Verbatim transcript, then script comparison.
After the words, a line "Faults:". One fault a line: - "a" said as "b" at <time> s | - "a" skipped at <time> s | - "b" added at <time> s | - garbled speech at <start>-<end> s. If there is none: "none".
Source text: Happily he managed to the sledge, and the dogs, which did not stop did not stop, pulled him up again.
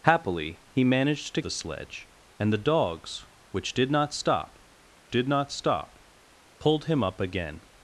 Happily he managed to the sledge, and the dogs, which did not stop did not stop, pulled him up again.
Faults:
none